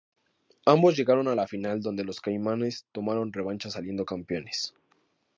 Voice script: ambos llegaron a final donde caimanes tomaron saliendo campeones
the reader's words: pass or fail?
fail